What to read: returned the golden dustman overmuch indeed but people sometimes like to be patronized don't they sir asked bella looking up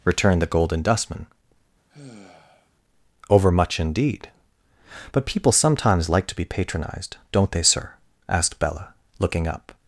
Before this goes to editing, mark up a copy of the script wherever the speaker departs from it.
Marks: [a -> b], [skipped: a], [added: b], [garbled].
returned the golden dustman overmuch indeed but people sometimes like to be patronized don't they sir asked bella looking up